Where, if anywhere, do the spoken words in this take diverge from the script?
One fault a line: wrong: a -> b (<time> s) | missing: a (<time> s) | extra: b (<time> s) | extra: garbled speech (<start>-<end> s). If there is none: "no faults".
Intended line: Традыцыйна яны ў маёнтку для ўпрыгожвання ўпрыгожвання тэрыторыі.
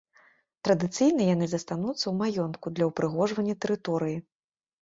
extra: застануцца (1.5 s)
missing: ўпрыгожвання (3.5 s)